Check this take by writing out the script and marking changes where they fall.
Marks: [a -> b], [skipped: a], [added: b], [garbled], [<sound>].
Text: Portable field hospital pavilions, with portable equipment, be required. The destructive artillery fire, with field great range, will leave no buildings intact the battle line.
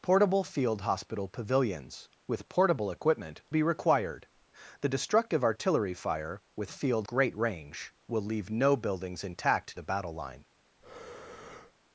Portable field hospital pavilions, with portable equipment, be required. The destructive artillery fire, with field great range, will leave no buildings intact the battle line. [breath]